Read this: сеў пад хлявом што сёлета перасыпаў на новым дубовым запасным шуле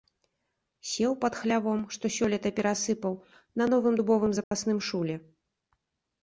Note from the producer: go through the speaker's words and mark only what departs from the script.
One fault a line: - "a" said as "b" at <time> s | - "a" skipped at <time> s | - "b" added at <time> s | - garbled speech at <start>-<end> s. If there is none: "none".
none